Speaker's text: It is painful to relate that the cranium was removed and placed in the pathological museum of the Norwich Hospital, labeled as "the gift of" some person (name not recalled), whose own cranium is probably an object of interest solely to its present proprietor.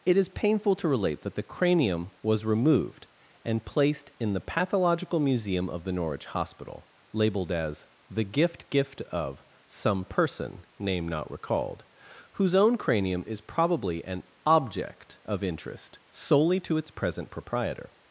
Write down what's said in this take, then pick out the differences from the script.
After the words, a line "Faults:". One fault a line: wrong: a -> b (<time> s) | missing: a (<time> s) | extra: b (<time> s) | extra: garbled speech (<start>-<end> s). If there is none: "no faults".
It is painful to relate that the cranium was removed and placed in the pathological museum of the Norwich Hospital, labeled as "the gift gift of" some person (name not recalled), whose own cranium is probably an object of interest solely to its present proprietor.
Faults:
extra: gift (8.7 s)